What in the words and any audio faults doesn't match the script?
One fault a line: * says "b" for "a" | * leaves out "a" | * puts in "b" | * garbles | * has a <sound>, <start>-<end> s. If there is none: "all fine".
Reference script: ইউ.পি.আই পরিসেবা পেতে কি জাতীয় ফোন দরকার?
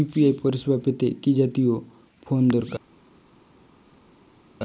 all fine